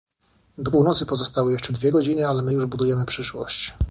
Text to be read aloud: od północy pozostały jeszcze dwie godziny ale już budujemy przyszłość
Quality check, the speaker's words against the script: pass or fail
fail